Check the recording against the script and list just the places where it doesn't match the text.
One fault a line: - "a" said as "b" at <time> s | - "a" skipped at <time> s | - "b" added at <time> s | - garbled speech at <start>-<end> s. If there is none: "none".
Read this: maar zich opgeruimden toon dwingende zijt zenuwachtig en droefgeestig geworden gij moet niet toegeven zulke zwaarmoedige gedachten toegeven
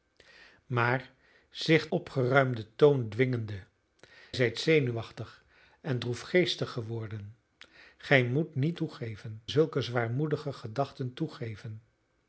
none